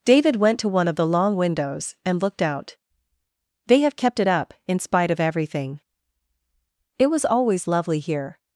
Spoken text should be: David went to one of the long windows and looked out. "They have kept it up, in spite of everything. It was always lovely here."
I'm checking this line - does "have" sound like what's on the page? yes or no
yes